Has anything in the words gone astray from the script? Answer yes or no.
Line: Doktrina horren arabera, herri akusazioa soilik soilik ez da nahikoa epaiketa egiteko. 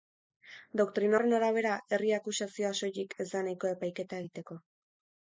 yes